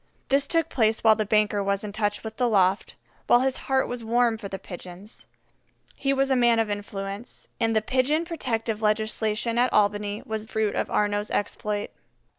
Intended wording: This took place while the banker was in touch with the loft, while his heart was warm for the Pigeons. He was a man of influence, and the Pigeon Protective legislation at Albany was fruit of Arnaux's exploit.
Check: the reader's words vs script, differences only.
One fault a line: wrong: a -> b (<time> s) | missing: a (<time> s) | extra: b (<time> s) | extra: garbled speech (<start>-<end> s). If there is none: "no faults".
no faults